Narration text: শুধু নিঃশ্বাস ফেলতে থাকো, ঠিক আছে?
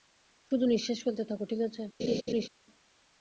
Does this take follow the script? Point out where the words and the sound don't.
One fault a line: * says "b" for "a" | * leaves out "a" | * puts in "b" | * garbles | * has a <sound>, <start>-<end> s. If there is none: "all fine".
* has a laugh, 2.0-2.5 s